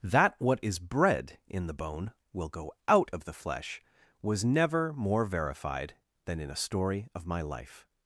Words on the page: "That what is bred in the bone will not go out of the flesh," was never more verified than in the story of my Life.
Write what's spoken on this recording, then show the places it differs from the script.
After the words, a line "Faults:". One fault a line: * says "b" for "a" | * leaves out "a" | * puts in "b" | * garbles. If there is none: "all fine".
"That what is bred in the bone will go out of the flesh," was never more verified than in a story of my Life.
Faults:
* leaves out "not"
* says "a" for "the"